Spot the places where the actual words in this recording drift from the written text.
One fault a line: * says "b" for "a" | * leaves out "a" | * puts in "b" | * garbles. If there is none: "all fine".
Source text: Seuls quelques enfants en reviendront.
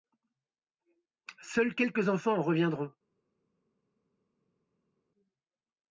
all fine